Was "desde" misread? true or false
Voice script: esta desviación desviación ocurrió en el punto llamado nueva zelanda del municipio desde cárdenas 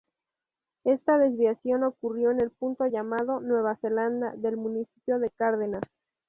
true